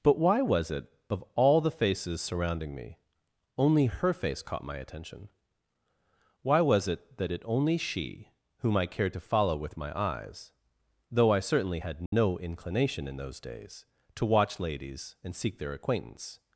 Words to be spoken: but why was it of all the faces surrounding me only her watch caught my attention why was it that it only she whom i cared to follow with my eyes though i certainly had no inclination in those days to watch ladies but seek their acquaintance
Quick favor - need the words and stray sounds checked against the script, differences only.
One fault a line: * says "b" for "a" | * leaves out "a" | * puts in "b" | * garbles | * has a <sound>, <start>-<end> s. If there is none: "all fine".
* says "face" for "watch"
* has a dropout, 12.1-12.1 s
* says "and" for "but"